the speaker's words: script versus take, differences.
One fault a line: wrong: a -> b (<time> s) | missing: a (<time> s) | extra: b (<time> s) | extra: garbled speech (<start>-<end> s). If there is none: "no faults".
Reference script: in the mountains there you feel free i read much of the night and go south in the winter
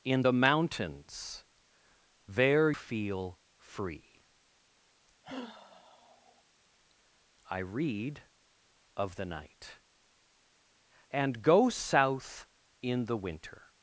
missing: you (2.7 s)
missing: much (8.2 s)